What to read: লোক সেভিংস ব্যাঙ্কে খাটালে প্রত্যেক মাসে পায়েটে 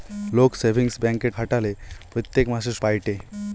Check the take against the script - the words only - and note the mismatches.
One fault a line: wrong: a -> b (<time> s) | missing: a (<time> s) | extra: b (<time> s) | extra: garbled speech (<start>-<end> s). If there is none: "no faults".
no faults